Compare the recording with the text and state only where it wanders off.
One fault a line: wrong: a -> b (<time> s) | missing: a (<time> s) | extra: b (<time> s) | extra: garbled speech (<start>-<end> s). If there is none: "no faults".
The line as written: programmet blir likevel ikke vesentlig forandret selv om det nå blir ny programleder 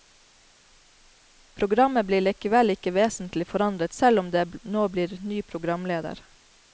no faults